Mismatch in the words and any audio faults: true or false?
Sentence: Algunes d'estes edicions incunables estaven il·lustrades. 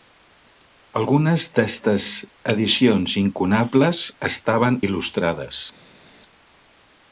false